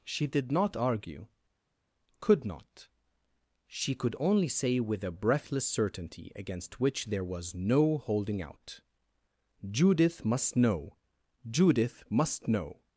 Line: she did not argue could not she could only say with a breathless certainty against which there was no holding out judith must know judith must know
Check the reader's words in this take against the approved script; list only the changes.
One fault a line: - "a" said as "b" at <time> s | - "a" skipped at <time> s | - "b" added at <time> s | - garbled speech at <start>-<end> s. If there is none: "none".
none